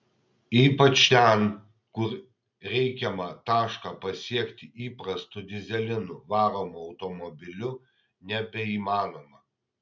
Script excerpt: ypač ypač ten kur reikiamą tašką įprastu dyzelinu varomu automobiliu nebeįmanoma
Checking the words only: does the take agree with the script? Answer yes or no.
no